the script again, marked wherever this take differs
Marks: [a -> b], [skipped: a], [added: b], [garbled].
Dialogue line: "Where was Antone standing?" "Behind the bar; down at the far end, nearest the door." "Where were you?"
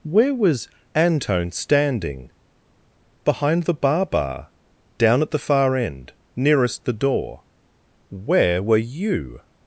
"Where was Antone standing?" "Behind the bar; [added: bar] down at the far end, nearest the door." "Where were you?"